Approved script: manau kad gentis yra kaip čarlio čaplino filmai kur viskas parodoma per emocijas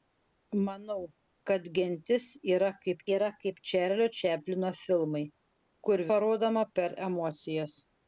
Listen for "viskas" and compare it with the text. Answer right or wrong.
wrong